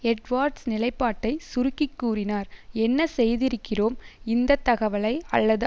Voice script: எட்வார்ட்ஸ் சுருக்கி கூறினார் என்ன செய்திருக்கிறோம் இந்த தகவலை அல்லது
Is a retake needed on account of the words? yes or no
yes